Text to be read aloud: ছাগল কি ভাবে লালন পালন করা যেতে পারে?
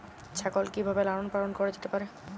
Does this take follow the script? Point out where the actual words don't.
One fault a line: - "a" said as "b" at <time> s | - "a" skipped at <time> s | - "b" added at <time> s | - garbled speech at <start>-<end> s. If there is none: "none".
none